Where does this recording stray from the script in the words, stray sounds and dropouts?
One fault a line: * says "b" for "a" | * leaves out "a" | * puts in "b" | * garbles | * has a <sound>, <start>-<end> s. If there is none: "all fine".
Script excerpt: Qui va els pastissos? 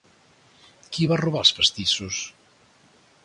* puts in "robar"